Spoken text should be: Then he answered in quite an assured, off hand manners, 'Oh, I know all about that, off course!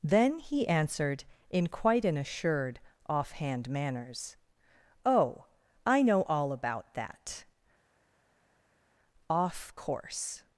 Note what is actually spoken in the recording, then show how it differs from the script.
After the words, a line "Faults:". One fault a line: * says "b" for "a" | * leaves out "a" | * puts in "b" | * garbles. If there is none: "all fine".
Then he answered in quite an assured, off hand manners, 'Oh, I know all about that, off course!
Faults:
all fine